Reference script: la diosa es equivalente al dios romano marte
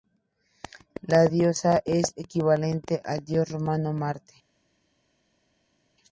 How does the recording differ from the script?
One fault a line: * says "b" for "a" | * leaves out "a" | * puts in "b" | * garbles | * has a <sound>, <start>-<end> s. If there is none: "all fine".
all fine